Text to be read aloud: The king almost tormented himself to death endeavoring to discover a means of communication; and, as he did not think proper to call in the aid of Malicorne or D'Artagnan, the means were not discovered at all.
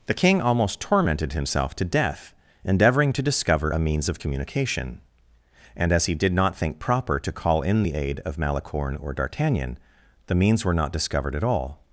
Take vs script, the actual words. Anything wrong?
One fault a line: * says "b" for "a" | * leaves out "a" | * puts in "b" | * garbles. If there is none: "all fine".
all fine